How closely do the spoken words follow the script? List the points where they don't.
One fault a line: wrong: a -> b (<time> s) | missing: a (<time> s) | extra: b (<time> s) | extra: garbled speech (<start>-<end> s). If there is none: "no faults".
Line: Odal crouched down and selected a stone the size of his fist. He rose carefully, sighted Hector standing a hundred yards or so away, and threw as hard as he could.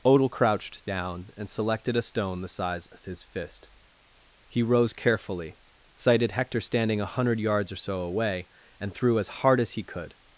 no faults